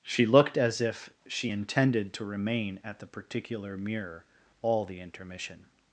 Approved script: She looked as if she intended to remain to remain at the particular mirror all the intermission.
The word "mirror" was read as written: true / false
true